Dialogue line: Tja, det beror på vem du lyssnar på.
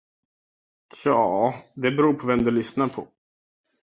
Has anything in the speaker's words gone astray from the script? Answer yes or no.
no